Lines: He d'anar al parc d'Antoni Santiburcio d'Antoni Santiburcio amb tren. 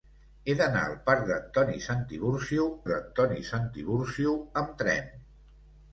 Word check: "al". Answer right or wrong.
right